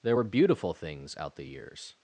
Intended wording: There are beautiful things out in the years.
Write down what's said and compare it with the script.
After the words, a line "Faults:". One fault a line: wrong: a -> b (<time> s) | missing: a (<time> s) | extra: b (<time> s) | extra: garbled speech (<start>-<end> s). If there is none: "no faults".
There were beautiful things out the years.
Faults:
wrong: are -> were (0.1 s)
missing: in (1.4 s)